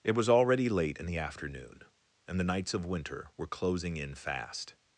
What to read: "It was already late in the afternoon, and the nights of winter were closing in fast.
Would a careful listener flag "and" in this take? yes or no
no